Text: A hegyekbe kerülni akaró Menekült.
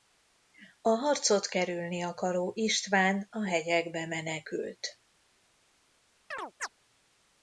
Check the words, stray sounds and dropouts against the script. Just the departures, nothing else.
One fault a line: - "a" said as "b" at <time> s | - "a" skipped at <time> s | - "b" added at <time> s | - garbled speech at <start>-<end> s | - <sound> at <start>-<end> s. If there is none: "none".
- "hegyekbe" said as "harcot" at 0.9 s
- "István a hegyekbe" added at 2.6 s
- chirp at 6.3-6.7 s